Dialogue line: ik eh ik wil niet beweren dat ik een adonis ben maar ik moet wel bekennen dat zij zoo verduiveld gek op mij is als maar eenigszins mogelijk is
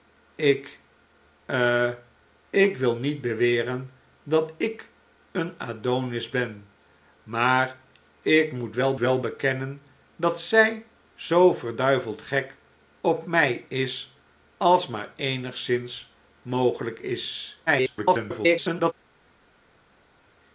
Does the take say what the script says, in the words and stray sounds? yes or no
no